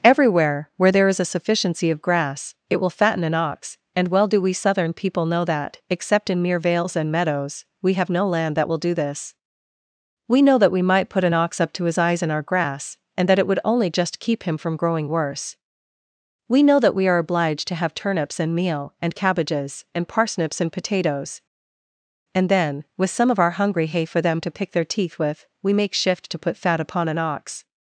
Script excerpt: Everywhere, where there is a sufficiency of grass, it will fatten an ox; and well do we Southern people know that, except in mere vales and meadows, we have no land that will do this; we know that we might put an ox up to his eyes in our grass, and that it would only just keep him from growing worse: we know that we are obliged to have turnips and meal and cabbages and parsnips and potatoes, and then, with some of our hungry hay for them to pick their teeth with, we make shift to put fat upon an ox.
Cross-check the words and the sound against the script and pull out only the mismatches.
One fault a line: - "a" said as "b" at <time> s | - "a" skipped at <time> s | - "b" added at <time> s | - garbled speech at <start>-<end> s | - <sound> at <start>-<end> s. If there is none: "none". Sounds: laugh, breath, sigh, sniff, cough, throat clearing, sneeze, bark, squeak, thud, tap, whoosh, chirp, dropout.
none